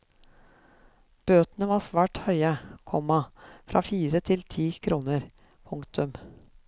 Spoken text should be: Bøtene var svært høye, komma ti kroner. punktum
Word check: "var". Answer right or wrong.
right